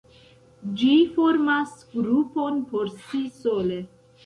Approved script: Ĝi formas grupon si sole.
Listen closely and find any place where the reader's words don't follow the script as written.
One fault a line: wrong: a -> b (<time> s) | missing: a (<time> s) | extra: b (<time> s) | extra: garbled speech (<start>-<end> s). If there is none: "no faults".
extra: por (2.7 s)